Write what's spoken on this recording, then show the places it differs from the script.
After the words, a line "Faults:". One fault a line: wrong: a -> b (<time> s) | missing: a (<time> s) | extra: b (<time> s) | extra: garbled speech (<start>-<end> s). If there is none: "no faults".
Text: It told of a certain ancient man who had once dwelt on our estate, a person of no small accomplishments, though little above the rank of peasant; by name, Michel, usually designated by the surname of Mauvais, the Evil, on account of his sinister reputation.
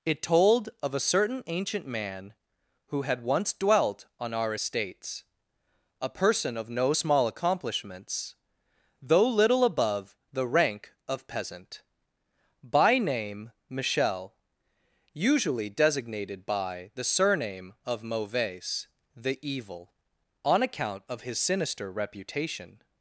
It told of a certain ancient man who had once dwelt on our estates, a person of no small accomplishments, though little above the rank of peasant; by name, Michel, usually designated by the surname of Mauvais, the Evil, on account of his sinister reputation.
Faults:
wrong: estate -> estates (4.5 s)